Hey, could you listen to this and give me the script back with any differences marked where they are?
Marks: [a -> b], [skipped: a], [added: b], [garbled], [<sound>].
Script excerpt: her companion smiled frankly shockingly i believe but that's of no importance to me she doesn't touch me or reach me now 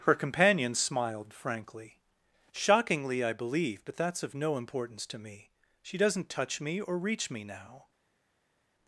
her companion smiled frankly shockingly i believe but that's of no importance to me she doesn't touch me or reach me now